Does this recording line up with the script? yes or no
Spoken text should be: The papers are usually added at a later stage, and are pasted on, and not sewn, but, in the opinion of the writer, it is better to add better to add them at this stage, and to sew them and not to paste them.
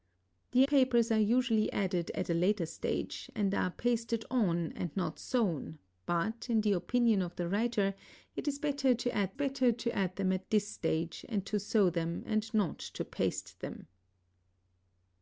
yes